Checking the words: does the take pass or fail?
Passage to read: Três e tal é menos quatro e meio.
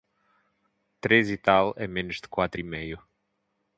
fail